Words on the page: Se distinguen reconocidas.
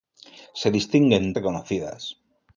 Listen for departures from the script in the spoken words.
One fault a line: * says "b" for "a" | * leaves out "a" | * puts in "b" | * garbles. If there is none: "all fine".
all fine